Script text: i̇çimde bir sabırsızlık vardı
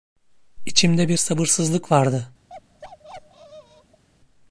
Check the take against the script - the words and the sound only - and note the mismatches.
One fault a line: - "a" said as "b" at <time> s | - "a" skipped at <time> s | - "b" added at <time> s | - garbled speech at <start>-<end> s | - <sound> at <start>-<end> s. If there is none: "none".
- bark at 2.5-4.0 s